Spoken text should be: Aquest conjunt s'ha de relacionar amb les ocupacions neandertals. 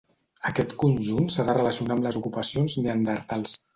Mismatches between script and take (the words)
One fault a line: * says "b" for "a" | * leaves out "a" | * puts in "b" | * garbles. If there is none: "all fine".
all fine